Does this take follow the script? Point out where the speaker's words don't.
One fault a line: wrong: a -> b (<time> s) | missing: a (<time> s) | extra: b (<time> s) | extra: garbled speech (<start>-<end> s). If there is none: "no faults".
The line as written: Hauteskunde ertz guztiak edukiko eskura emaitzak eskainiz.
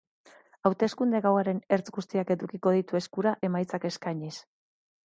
extra: gauaren (1.2 s)
extra: ditu (2.8 s)